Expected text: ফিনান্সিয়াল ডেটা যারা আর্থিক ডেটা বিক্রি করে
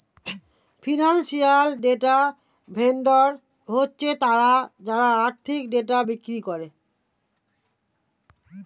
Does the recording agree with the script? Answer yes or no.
no